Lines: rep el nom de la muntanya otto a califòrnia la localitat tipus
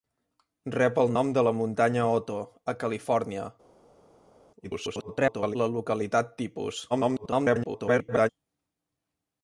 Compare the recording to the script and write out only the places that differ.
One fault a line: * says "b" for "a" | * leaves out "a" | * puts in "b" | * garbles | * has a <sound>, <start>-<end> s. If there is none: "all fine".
* garbles
* garbles